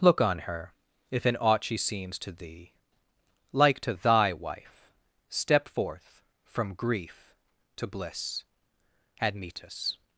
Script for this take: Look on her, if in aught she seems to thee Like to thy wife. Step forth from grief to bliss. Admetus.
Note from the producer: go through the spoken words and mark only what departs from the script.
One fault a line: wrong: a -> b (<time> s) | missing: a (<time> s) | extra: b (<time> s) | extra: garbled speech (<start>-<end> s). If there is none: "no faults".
no faults